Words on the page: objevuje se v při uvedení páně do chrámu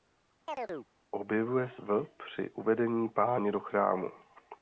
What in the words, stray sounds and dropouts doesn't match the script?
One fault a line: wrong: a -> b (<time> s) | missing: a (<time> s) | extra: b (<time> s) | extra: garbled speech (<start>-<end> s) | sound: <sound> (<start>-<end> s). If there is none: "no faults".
sound: chirp (0.5-0.9 s)
missing: se (1.7 s)